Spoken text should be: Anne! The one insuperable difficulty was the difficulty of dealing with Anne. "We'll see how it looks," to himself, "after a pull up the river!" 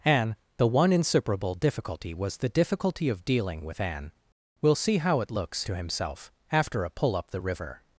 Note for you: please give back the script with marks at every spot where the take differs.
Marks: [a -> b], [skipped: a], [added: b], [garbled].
Anne! The one insuperable difficulty was the difficulty of dealing with Anne. "We'll see how it looks," to himself, "after a pull up the river!"